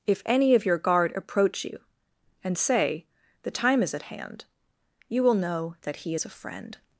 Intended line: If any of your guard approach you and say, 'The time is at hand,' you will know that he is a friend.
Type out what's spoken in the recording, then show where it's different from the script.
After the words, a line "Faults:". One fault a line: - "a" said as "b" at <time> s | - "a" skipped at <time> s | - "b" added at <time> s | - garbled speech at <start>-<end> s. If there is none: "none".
If any of your guard approach you and say, 'The time is at hand,' you will know that he is a friend.
Faults:
none